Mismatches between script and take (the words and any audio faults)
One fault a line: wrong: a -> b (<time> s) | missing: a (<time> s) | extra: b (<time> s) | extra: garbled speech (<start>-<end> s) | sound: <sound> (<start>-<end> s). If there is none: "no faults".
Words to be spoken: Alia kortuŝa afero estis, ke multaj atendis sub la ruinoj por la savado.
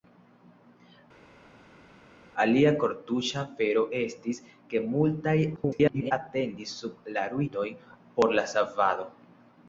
extra: garbled speech (5.6-6.1 s)